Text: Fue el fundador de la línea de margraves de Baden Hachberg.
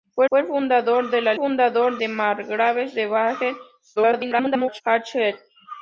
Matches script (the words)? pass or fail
fail